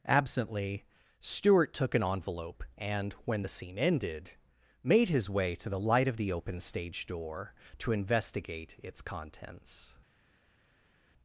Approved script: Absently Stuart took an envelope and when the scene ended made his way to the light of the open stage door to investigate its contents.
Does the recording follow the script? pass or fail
pass